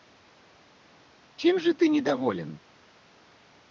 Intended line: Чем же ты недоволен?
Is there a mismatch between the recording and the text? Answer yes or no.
no